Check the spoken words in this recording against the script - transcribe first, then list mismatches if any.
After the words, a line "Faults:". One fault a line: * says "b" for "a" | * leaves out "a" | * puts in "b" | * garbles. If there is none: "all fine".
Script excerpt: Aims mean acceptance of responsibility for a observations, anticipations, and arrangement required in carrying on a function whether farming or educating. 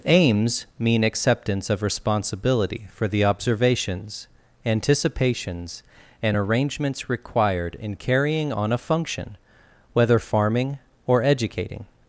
Aims mean acceptance of responsibility for the observations, anticipations, and arrangements required in carrying on a function whether farming or educating.
Faults:
* says "the" for "a"
* says "arrangements" for "arrangement"